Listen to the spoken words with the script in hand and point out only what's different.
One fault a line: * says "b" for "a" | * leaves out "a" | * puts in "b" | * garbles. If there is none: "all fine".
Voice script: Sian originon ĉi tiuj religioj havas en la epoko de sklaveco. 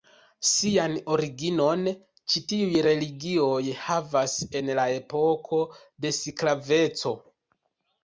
all fine